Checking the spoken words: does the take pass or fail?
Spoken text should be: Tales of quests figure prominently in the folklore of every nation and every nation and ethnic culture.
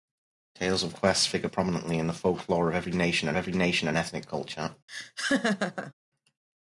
pass